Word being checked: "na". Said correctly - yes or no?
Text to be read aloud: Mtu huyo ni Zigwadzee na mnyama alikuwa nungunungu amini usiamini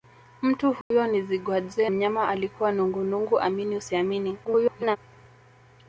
no